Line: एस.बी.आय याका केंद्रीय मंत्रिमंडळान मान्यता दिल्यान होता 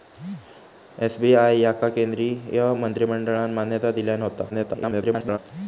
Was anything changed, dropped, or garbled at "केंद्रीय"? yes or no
no